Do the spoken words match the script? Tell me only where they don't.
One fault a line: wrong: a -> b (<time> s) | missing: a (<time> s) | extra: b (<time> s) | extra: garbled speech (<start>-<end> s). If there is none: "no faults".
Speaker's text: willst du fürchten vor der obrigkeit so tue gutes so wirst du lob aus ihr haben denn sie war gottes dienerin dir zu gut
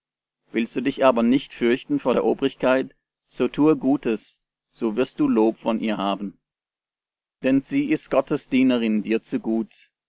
extra: dich aber nicht (0.8 s)
wrong: aus -> von (5.6 s)
wrong: war -> ist (7.9 s)